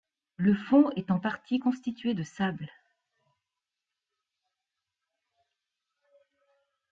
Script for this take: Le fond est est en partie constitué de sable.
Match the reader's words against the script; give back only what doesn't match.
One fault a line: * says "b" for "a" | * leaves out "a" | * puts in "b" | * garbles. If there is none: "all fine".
* leaves out "est"